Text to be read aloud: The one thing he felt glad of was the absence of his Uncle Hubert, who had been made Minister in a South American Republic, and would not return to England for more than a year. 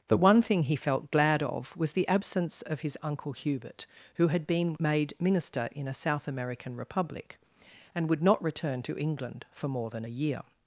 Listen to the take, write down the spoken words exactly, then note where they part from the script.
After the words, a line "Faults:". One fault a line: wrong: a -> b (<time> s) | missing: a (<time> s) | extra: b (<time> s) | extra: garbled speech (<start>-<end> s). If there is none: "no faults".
The one thing he felt glad of was the absence of his Uncle Hubert, who had been made Minister in a South American Republic, and would not return to England for more than a year.
Faults:
no faults